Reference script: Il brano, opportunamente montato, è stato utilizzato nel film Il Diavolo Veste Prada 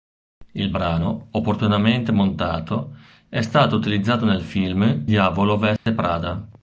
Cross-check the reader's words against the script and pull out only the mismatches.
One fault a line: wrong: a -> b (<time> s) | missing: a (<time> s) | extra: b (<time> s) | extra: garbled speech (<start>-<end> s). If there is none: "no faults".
missing: Il (5.0 s)